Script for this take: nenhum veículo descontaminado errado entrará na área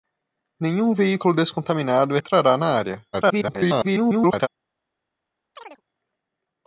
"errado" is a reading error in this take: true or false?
true